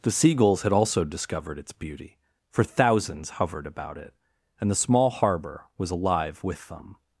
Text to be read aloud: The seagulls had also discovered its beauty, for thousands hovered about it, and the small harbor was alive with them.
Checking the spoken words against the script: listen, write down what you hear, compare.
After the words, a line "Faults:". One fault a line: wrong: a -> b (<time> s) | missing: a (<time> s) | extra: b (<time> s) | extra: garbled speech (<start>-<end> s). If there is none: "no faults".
The seagulls had also discovered its beauty, for thousands hovered about it, and the small harbor was alive with them.
Faults:
no faults